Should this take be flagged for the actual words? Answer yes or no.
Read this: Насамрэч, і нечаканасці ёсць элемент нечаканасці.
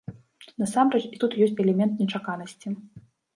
yes